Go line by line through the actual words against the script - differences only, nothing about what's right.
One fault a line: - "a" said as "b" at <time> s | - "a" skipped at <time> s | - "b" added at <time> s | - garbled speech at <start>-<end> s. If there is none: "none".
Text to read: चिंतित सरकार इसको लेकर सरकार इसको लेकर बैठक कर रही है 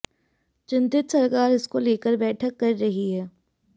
- "सरकार इसको लेकर" skipped at 2.2 s